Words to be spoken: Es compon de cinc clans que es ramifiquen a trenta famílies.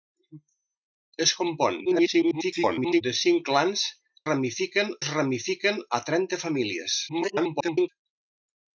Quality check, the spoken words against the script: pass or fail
fail